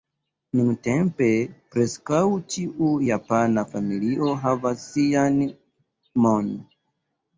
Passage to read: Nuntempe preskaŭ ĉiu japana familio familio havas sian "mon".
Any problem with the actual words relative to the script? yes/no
yes